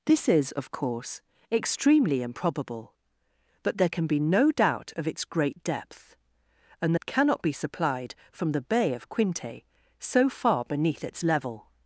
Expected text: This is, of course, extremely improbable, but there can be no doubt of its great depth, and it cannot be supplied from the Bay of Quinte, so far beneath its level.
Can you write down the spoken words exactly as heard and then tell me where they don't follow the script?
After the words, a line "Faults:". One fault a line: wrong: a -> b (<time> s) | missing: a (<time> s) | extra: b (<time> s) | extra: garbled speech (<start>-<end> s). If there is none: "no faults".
This is, of course, extremely improbable, but there can be no doubt of its great depth, and it cannot be supplied from the Bay of Quinte, so far beneath its level.
Faults:
no faults